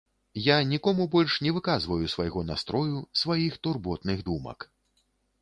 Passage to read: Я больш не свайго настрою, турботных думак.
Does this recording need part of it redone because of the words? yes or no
yes